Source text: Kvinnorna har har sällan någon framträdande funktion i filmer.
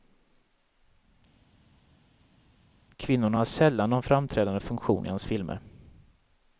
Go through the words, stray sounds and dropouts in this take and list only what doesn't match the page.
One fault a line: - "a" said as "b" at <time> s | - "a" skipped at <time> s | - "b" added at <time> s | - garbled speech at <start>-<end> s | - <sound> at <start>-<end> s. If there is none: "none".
- "har" skipped at 3.5 s
- "hans" added at 5.1 s